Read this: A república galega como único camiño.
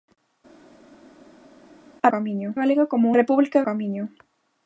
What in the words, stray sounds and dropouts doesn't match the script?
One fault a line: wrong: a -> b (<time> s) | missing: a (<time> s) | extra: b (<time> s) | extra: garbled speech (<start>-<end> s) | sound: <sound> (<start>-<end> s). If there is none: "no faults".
wrong: república -> camiño (2.1 s)
wrong: único -> república (3.2 s)